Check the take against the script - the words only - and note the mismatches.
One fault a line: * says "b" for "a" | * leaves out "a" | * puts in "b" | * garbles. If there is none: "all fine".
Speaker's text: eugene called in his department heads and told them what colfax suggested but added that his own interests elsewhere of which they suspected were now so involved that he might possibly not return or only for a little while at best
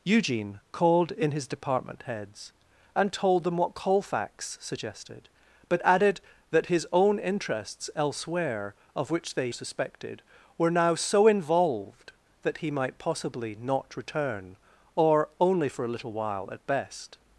all fine